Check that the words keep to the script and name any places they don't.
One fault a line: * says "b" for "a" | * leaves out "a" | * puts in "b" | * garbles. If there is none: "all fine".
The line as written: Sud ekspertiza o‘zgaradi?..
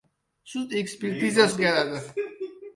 all fine